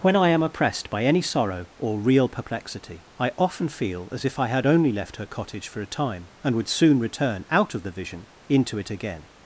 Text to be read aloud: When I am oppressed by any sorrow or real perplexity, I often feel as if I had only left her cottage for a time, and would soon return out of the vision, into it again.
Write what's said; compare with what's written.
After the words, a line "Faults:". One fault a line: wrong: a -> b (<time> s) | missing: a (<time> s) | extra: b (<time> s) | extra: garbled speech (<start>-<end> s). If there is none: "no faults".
When I am oppressed by any sorrow or real perplexity, I often feel as if I had only left her cottage for a time, and would soon return out of the vision, into it again.
Faults:
no faults